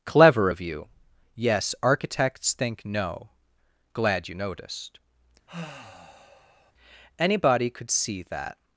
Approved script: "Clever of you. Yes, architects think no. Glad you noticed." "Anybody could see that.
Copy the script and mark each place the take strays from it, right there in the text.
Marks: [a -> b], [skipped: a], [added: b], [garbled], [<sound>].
"Clever of you. Yes, architects think no. Glad you noticed." [sigh] "Anybody could see that.